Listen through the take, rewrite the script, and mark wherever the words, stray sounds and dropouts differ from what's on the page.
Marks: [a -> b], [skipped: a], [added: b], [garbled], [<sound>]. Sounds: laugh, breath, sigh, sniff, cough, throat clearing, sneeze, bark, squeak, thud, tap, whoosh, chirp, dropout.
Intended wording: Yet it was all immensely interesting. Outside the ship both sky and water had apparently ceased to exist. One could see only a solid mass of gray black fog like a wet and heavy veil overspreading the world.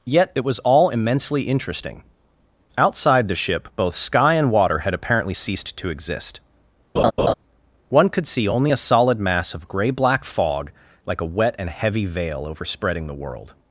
Yet it was all immensely interesting. Outside the ship both sky and water had apparently ceased to exist. [laugh] One could see only a solid mass of gray black fog like a wet and heavy veil overspreading the world.